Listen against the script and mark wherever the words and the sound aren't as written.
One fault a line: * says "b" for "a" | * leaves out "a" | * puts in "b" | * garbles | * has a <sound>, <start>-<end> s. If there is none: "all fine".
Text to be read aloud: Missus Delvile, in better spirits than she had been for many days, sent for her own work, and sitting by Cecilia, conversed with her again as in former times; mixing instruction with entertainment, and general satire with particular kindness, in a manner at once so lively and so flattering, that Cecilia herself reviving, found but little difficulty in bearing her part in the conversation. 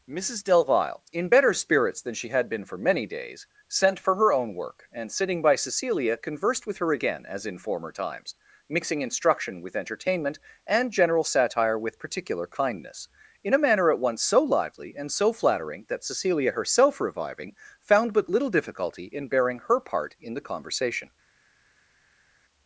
all fine